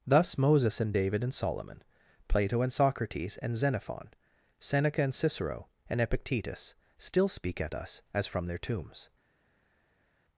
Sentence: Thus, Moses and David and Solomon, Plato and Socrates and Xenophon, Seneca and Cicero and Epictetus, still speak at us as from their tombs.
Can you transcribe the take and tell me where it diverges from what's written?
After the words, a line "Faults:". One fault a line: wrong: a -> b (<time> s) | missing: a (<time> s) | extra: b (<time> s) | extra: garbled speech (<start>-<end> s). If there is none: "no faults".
Thus, Moses and David and Solomon, Plato and Socrates and Xenophon, Seneca and Cicero and Epictetus, still speak at us as from their tombs.
Faults:
no faults